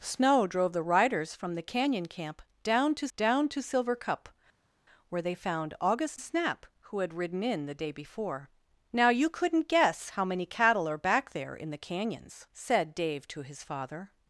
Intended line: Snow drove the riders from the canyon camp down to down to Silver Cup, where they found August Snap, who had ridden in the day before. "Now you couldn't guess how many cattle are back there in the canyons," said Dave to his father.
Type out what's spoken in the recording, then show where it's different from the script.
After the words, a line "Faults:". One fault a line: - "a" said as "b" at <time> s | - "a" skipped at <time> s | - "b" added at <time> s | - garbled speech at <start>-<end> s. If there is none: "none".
Snow drove the riders from the canyon camp down to down to Silver Cup, where they found August Snap, who had ridden in the day before. "Now you couldn't guess how many cattle are back there in the canyons," said Dave to his father.
Faults:
none